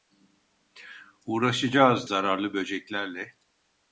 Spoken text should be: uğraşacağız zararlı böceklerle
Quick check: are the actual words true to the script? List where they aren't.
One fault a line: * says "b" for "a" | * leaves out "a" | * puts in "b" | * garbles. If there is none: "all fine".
all fine